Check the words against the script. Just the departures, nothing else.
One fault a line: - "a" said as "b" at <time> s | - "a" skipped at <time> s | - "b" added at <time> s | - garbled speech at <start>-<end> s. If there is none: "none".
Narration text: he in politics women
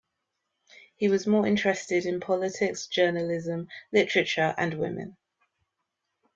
- "was more interested" added at 1.1 s
- "journalism literature and" added at 2.9 s